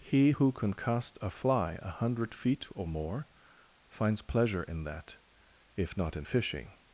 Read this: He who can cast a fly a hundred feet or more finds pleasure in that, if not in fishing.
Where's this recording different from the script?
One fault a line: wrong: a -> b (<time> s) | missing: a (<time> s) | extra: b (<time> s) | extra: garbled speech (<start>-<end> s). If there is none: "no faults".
no faults